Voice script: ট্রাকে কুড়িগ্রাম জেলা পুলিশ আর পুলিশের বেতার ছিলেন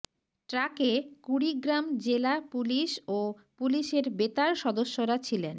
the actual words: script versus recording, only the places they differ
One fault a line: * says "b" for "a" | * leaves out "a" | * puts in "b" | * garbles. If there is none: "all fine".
* says "ও" for "আর"
* puts in "সদস্যরা"